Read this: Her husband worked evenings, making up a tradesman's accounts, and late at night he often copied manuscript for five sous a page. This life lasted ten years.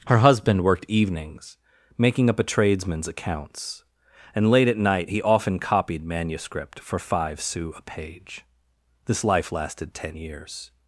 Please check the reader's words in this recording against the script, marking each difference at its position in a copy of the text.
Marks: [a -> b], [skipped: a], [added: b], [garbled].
Her husband worked evenings, making up a tradesman's accounts, and late at night he often copied manuscript for five sous a page. This life lasted ten years.